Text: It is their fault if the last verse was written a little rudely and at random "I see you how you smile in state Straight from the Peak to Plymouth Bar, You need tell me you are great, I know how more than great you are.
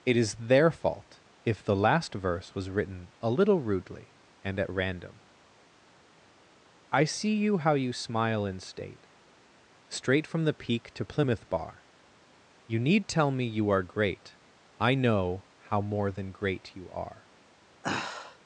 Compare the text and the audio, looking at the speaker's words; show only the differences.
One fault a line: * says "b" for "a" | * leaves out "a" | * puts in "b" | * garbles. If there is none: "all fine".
all fine